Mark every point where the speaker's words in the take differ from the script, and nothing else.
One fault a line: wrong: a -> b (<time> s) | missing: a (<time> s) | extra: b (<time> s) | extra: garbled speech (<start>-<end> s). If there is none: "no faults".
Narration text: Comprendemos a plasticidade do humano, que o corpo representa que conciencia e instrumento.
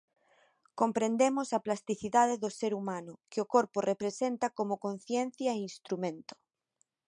extra: ser (2.6 s)
wrong: que -> como (4.6 s)